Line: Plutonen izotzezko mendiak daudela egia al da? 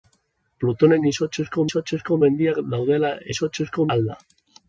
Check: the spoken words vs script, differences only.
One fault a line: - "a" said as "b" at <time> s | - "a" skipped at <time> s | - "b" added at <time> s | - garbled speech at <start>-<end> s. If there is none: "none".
- "izotzezko" added at 1.6 s
- "egia" said as "izotzezko" at 3.3 s